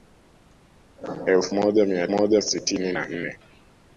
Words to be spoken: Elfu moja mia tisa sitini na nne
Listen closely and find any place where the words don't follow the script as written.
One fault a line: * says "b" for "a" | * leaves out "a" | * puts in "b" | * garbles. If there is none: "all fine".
* says "moja" for "tisa"